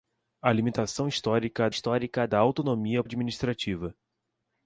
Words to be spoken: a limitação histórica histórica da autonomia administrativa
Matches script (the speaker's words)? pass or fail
pass